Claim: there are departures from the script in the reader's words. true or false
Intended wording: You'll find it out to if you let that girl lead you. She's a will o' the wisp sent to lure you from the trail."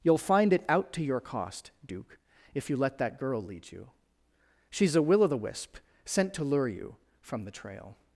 true